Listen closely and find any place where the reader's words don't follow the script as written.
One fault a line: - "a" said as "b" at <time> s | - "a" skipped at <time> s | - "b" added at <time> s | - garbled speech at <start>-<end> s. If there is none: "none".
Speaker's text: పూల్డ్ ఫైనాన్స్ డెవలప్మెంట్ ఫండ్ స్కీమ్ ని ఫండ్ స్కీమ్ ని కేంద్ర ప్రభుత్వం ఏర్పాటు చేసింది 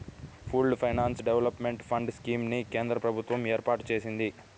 - "ఫండ్ స్కీమ్ ని" skipped at 2.6 s